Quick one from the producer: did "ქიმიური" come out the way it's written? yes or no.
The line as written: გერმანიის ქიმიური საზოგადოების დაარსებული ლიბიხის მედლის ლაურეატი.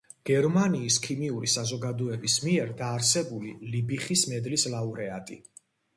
yes